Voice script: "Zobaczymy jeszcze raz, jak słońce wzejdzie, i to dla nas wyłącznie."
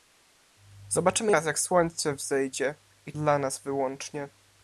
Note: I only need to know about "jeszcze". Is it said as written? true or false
false